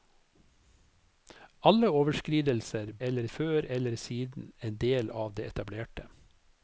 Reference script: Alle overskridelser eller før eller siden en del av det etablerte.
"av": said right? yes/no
yes